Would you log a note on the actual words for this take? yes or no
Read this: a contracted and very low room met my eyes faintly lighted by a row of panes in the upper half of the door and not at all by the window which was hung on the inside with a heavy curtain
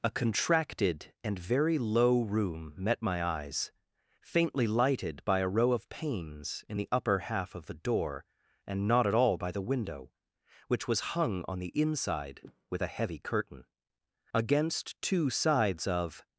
yes